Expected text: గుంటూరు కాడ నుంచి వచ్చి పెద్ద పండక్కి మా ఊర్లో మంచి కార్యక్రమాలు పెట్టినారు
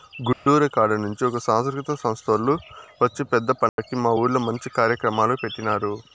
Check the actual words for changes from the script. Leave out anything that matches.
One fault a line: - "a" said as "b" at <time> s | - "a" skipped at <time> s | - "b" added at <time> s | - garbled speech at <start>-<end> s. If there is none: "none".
- "ఒక సాంస్కృతిక సంస్తోల్లు" added at 1.3 s